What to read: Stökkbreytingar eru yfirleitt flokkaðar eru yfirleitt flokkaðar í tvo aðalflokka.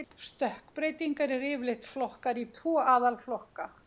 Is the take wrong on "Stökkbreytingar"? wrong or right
right